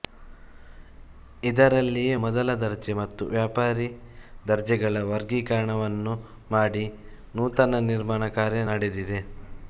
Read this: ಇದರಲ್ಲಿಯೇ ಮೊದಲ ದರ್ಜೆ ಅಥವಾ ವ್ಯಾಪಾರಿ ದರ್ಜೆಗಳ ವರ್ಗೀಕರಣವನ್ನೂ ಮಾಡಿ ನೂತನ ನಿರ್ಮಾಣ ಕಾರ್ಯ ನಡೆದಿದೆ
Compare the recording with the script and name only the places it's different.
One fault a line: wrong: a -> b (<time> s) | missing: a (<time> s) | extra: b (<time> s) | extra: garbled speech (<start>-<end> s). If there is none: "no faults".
wrong: ಅಥವಾ -> ಮತ್ತು (3.0 s)